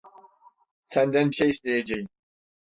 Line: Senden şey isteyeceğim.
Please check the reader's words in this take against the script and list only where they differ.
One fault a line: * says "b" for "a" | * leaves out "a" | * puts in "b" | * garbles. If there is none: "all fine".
all fine